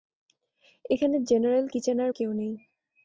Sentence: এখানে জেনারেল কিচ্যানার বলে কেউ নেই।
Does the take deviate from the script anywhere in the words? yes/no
yes